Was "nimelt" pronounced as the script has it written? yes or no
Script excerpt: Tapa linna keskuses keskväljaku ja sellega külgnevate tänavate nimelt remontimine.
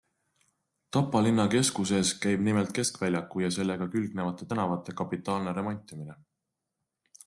no